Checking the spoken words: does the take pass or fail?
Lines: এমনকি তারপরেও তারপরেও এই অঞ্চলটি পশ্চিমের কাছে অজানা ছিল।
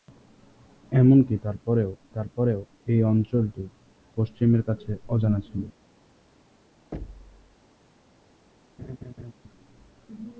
pass